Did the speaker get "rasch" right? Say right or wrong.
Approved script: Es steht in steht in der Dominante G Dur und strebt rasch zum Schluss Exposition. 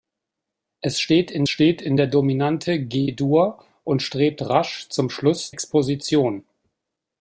right